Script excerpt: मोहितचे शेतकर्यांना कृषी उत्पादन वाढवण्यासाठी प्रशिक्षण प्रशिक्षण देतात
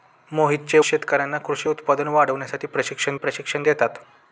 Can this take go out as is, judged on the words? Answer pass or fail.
pass